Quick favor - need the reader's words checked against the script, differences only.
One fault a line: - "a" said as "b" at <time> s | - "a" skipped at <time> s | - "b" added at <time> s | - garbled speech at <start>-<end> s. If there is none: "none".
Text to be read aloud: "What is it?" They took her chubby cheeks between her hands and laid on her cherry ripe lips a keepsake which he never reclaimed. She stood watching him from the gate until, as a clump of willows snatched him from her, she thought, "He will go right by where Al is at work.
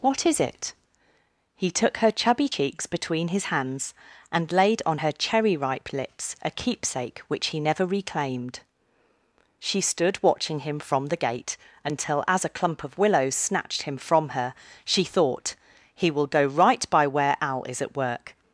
- "They" said as "He" at 1.6 s
- "her" said as "his" at 3.3 s